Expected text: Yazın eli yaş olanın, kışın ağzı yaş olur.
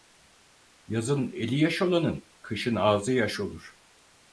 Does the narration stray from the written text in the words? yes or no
no